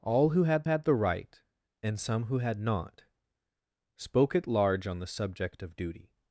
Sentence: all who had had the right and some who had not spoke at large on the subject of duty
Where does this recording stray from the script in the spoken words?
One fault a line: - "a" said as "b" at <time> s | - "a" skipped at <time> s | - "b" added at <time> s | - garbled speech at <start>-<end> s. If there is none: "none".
none